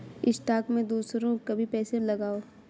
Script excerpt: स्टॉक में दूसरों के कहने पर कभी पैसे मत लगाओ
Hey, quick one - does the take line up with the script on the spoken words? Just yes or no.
no